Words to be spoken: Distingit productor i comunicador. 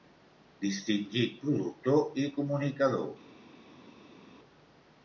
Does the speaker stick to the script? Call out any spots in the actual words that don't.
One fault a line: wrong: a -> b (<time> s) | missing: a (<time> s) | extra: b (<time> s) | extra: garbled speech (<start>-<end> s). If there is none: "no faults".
no faults